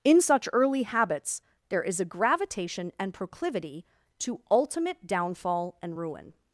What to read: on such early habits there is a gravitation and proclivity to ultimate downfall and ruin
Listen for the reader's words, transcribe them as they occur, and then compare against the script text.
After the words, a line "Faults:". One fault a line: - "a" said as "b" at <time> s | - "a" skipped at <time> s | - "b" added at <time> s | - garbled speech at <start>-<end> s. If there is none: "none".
in such early habits there is a gravitation and proclivity to ultimate downfall and ruin
Faults:
- "on" said as "in" at 0.0 s